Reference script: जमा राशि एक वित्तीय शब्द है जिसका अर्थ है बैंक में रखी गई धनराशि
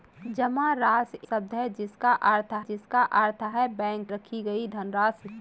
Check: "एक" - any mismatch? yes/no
yes